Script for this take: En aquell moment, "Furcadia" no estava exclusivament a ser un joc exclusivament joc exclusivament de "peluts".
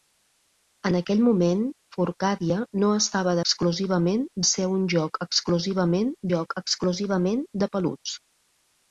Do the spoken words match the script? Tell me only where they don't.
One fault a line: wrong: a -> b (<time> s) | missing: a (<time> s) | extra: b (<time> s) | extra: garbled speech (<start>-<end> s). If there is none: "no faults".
no faults